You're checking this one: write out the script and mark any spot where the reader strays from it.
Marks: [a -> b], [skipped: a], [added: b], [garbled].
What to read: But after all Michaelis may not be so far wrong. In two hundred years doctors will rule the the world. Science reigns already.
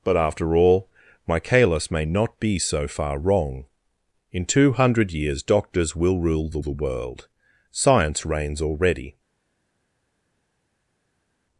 But after all Michaelis may not be so far wrong. In two hundred years doctors will rule the the world. Science reigns already.